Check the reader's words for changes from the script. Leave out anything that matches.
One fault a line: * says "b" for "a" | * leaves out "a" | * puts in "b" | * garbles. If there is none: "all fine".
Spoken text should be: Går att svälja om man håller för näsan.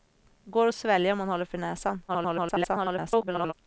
* garbles